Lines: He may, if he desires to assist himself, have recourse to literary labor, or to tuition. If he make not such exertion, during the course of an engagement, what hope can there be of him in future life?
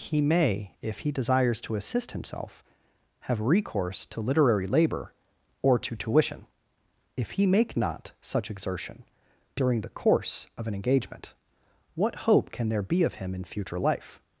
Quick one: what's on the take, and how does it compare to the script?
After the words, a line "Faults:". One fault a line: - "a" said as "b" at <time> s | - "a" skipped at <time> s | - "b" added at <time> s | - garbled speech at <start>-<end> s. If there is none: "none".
He may, if he desires to assist himself, have recourse to literary labor, or to tuition. If he make not such exertion, during the course of an engagement, what hope can there be of him in future life?
Faults:
none